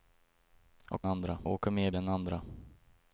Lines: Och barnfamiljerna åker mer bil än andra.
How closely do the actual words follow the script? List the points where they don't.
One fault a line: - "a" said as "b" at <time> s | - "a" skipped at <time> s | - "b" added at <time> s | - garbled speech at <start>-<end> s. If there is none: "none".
- "barnfamiljerna" said as "andra" at 1.0 s
- "bil" skipped at 1.9 s